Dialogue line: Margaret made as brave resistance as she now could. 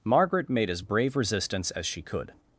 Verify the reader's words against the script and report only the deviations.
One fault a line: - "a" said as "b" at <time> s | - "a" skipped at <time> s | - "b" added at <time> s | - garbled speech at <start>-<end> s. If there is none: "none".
- "now" skipped at 2.0 s